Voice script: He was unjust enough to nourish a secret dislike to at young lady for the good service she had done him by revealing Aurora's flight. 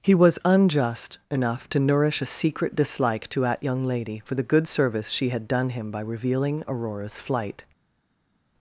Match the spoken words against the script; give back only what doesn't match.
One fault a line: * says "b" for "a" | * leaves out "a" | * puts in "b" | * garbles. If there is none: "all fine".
all fine